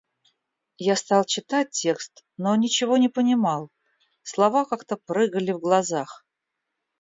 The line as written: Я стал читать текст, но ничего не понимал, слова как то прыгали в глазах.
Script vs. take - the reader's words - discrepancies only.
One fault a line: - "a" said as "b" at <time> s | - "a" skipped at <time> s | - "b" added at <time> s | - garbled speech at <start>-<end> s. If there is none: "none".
none